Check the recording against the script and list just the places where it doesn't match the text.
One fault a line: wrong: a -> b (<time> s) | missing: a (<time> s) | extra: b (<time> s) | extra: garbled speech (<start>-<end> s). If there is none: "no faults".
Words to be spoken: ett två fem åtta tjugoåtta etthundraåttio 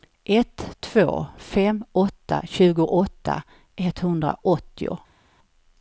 no faults